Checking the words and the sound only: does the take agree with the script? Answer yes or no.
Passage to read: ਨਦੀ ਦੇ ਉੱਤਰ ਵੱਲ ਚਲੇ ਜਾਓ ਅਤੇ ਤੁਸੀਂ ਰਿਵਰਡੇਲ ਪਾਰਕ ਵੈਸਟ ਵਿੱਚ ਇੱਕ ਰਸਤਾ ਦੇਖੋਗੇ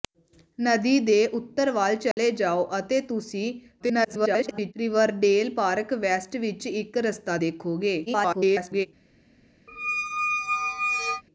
no